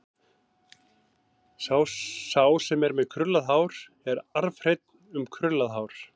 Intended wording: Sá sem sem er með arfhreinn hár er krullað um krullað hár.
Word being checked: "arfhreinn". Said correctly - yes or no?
no